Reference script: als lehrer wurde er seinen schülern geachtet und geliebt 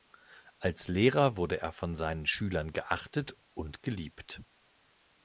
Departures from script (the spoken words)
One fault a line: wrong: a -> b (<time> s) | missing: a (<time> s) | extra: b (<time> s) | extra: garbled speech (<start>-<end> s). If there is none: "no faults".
extra: von (1.7 s)